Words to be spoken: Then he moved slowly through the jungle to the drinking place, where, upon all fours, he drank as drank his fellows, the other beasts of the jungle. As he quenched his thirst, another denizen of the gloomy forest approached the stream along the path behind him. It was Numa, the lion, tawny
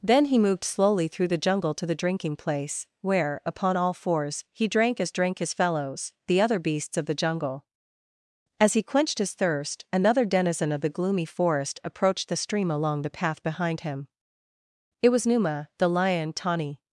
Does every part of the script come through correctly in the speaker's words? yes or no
yes